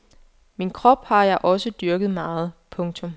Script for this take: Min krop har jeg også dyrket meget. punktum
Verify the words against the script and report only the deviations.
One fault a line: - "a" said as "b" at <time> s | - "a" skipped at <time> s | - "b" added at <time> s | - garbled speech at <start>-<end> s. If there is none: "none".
none